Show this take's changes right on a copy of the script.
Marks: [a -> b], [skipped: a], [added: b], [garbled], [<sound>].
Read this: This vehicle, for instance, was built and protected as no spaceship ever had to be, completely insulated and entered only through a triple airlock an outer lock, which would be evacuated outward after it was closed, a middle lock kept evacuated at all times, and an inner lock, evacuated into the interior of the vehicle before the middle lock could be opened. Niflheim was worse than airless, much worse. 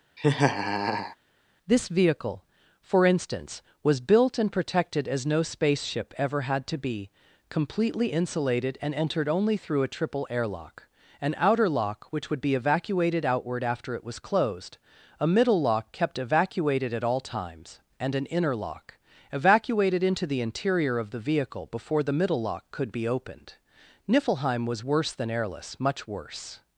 [laugh] This vehicle, for instance, was built and protected as no spaceship ever had to be, completely insulated and entered only through a triple airlock an outer lock, which would be evacuated outward after it was closed, a middle lock kept evacuated at all times, and an inner lock, evacuated into the interior of the vehicle before the middle lock could be opened. Niflheim was worse than airless, much worse.